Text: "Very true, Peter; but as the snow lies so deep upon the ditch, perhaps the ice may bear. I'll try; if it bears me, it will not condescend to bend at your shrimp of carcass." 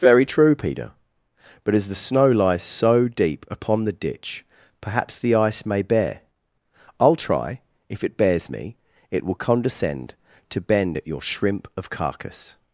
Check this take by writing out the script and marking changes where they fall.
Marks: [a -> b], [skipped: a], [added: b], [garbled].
"Very true, Peter; but as the snow lies so deep upon the ditch, perhaps the ice may bear. I'll try; if it bears me, it will [skipped: not] condescend to bend at your shrimp of carcass."